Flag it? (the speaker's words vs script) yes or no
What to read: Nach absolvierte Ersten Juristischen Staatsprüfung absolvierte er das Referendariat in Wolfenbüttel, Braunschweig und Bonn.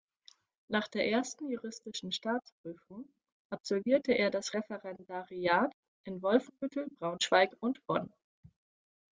yes